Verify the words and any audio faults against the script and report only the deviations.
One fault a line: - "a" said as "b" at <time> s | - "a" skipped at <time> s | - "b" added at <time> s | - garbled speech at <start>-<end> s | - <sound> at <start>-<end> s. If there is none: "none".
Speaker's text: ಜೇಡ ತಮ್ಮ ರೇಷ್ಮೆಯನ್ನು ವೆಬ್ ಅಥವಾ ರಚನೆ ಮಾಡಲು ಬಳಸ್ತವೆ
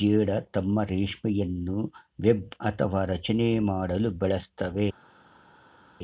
none